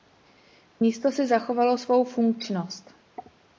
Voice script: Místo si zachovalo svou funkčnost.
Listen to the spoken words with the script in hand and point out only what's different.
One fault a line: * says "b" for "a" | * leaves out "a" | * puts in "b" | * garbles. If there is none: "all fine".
all fine